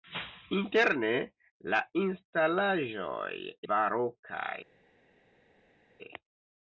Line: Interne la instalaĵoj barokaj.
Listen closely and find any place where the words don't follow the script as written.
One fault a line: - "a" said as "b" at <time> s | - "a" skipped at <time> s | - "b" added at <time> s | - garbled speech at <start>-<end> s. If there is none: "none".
none